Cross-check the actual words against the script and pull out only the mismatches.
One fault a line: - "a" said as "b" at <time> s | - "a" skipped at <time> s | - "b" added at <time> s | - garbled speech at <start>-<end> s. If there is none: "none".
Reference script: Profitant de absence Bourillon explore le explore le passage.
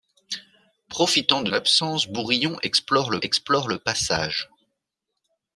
none